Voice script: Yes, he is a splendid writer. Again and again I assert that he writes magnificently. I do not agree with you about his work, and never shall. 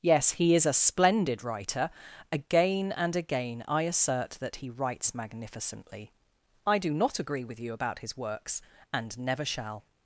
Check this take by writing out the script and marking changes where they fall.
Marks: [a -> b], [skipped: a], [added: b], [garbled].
Yes, he is a splendid writer. Again and again I assert that he writes magnificently. I do not agree with you about his [work, -> works] and never shall.